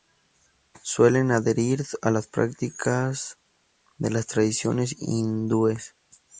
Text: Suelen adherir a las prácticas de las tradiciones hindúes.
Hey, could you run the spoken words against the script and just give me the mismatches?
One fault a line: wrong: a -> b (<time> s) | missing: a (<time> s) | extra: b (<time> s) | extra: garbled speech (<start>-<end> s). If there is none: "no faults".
no faults